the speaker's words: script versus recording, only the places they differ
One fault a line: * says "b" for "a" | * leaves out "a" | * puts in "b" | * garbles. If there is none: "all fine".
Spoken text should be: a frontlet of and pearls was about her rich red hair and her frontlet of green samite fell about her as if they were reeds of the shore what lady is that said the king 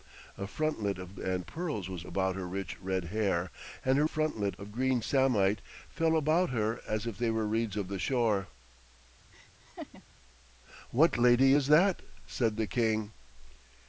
all fine